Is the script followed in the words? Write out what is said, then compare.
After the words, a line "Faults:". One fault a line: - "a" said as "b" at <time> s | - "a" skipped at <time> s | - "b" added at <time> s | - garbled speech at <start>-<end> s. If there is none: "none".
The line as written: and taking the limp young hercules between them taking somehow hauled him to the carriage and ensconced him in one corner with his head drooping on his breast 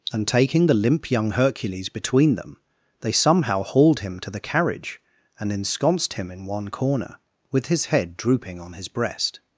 and taking the limp young hercules between them they somehow hauled him to the carriage and ensconced him in one corner with his head drooping on his breast
Faults:
- "taking" said as "they" at 3.0 s